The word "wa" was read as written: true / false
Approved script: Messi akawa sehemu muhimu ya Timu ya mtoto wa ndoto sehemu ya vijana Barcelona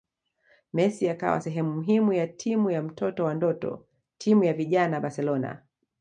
true